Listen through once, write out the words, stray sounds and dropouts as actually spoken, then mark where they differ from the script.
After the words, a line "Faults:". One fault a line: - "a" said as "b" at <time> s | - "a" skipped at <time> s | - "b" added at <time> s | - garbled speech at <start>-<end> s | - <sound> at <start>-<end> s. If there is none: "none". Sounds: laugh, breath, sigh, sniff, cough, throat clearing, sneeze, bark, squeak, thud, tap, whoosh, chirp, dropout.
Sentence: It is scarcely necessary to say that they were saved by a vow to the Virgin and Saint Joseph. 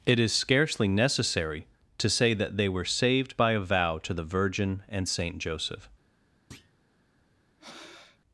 It is scarcely necessary to say that they were saved by a vow to the Virgin and Saint Joseph.
Faults:
- thud at 6.5-6.7 s
- breath at 7.6-8.2 s